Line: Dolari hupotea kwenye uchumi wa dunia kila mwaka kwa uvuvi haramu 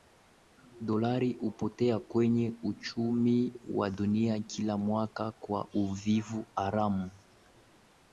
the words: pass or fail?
pass